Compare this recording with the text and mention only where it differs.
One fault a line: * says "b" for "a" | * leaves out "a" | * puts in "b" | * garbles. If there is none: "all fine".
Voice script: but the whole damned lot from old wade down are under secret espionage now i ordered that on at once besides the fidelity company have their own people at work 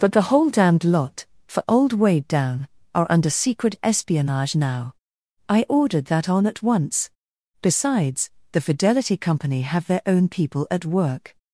* says "for" for "from"